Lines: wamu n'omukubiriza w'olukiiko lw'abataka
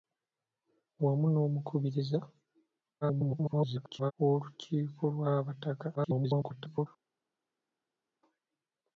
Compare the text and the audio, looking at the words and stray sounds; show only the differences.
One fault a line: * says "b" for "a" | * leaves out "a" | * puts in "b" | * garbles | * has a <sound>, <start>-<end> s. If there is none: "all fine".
* garbles
* garbles